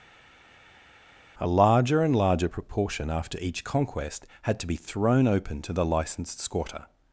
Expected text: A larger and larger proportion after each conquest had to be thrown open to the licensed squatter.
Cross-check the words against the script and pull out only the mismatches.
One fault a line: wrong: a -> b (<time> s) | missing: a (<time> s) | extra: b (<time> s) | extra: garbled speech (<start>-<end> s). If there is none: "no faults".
no faults